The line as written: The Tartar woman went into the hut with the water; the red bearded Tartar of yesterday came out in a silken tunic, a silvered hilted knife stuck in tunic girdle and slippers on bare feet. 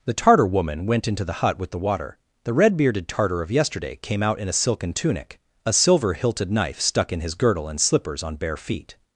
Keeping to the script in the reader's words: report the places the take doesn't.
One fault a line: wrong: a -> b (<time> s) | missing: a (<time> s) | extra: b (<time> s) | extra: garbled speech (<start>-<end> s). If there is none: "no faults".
wrong: silvered -> silver (5.7 s)
wrong: tunic -> his (7.2 s)